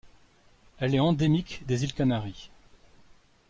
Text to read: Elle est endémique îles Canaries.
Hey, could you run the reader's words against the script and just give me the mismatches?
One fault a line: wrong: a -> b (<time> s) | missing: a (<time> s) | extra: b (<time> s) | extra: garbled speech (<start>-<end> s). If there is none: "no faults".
extra: des (1.7 s)